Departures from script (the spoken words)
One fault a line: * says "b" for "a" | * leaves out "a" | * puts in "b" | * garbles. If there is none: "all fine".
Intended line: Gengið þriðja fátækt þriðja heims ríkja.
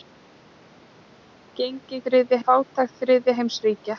all fine